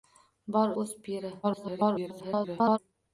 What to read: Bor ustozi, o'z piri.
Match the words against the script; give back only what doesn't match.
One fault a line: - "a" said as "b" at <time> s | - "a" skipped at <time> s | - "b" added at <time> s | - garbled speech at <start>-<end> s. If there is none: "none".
- "ustozi" skipped at 0.7 s
- garbled speech at 1.4-2.8 s